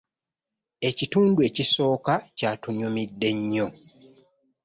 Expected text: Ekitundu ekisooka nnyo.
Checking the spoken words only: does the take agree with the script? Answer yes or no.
no